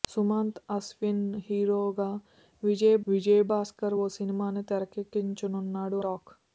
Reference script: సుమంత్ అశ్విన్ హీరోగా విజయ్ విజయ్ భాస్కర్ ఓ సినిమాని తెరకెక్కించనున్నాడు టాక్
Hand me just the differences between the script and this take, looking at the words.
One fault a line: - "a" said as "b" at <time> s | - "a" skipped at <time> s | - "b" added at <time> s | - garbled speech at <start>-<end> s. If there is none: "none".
none